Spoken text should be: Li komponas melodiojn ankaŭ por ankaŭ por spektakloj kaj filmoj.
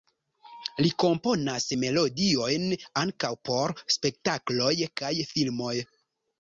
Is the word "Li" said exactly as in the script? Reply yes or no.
yes